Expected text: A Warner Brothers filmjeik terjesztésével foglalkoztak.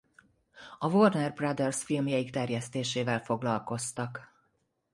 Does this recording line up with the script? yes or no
yes